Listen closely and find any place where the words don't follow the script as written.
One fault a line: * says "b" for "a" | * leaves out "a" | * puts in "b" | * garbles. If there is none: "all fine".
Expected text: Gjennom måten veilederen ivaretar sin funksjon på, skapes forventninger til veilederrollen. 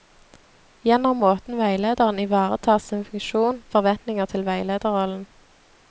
* leaves out "på skapes"